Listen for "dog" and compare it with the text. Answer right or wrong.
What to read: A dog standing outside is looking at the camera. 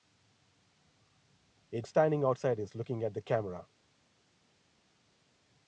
wrong